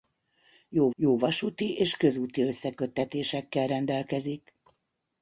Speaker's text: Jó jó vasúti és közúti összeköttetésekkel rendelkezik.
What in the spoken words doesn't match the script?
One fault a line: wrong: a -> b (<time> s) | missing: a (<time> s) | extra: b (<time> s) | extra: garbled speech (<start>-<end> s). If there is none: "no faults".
no faults